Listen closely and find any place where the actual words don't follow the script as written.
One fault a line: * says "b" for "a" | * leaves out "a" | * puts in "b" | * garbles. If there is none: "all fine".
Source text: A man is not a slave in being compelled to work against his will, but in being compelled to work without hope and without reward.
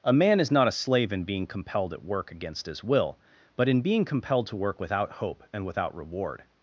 * says "at" for "to"